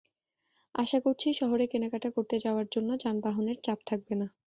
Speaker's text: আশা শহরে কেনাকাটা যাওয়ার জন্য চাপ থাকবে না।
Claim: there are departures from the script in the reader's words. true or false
true